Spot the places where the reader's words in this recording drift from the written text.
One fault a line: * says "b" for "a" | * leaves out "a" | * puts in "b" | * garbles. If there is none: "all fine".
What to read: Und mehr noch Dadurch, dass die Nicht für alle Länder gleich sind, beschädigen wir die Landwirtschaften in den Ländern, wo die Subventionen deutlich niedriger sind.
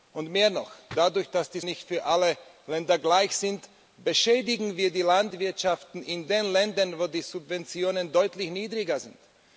all fine